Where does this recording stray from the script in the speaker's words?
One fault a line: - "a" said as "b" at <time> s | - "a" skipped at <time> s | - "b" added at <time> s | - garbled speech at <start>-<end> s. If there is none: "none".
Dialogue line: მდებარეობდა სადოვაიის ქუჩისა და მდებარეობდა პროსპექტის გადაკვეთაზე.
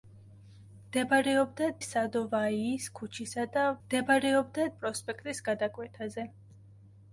none